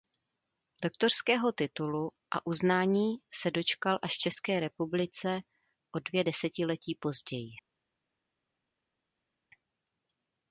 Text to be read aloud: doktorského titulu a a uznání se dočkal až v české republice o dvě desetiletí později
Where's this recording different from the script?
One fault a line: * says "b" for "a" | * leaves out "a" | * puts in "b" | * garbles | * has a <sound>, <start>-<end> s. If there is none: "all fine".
* leaves out "a"